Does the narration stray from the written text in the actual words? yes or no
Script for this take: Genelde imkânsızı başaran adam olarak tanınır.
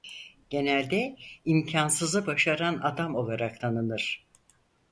no